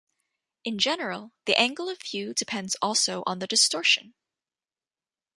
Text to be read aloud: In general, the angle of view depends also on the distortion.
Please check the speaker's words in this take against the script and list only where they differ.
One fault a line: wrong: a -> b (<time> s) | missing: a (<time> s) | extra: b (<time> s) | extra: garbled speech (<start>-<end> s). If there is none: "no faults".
no faults